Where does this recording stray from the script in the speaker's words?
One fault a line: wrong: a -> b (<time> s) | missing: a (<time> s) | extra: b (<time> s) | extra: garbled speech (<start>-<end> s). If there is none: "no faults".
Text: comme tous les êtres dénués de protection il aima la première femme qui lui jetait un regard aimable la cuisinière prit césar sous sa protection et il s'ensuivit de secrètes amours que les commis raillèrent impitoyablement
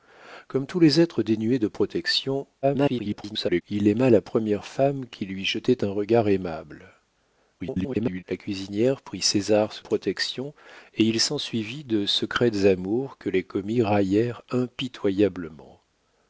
extra: garbled speech (2.6-3.6 s)
extra: garbled speech (7.6-8.2 s)
missing: sa (9.8 s)